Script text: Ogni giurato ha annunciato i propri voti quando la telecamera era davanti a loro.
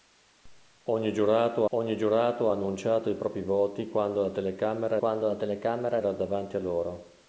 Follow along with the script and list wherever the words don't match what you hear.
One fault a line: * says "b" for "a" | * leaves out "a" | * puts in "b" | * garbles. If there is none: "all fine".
* puts in "ogni giurato"
* puts in "quando la telecamera"